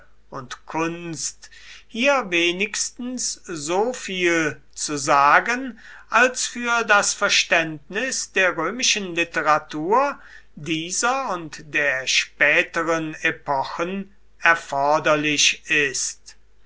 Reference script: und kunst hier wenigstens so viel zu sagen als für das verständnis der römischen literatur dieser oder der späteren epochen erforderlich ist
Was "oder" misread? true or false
true